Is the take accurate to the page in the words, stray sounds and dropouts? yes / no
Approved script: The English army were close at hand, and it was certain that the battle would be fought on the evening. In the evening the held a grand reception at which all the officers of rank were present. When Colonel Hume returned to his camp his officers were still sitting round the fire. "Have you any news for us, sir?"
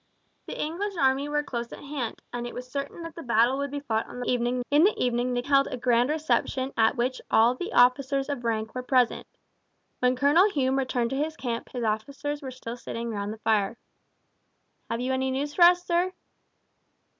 yes